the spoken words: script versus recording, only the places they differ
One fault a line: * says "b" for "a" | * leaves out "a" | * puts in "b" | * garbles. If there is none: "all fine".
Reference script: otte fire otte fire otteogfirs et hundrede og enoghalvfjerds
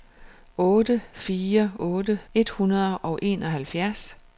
* leaves out "fire otteogfirs"